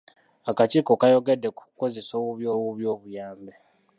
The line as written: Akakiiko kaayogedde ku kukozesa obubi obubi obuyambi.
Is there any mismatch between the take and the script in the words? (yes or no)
no